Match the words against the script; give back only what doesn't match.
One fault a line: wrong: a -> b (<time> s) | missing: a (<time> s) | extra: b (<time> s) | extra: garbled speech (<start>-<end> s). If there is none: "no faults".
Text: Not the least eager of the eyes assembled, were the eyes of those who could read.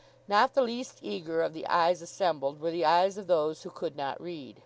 extra: not (3.9 s)